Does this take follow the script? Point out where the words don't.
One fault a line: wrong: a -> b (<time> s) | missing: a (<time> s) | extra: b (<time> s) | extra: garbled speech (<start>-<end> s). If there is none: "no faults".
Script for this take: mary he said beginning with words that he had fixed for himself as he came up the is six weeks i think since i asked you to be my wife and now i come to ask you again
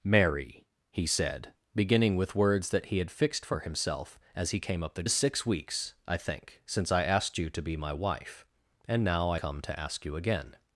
no faults